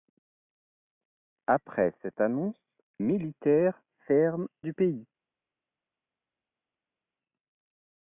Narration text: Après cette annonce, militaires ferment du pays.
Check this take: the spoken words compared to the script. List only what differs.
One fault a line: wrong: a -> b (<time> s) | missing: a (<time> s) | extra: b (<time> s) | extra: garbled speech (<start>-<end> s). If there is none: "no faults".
no faults